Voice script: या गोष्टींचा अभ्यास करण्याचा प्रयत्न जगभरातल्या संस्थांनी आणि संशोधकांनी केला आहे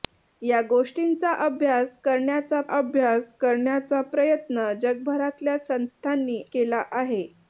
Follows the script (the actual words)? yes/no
no